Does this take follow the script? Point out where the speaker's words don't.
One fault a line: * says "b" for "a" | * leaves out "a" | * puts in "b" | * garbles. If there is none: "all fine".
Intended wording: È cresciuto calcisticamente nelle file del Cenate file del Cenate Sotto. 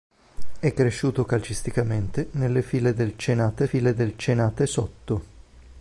all fine